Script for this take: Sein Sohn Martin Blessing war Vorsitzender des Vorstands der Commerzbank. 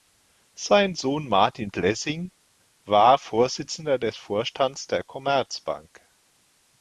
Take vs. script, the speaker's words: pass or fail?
pass